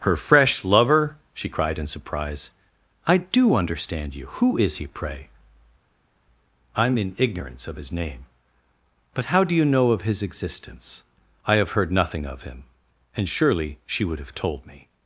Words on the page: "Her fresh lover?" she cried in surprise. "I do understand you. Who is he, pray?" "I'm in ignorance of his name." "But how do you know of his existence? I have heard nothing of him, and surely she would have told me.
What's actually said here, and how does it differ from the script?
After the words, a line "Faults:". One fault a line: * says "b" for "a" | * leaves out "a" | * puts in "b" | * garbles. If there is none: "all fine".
"Her fresh lover?" she cried in surprise. "I do understand you. Who is he, pray?" "I'm in ignorance of his name." "But how do you know of his existence? I have heard nothing of him, and surely she would have told me.
Faults:
all fine